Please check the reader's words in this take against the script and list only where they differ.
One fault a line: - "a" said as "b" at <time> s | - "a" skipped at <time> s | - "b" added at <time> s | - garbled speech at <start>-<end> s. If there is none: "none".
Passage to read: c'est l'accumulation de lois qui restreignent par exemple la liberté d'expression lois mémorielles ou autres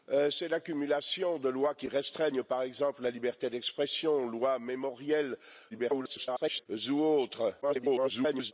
- garbled speech at 5.7-6.7 s
- garbled speech at 7.6-8.5 s